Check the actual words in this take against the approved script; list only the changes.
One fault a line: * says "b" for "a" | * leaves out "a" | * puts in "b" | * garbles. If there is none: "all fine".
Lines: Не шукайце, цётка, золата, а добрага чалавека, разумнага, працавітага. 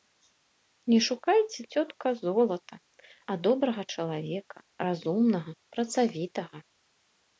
all fine